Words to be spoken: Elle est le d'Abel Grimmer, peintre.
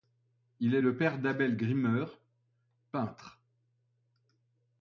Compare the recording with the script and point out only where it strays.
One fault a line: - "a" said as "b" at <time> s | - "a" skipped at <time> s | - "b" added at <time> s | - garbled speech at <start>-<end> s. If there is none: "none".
- "Elle" said as "Il" at 0.6 s
- "père" added at 1.0 s